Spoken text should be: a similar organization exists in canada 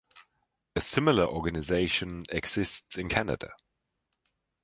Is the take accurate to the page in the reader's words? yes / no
yes